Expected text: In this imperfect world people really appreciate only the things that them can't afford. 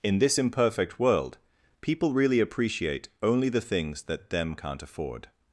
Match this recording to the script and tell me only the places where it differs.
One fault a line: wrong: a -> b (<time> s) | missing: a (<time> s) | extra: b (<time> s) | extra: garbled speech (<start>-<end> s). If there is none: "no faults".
no faults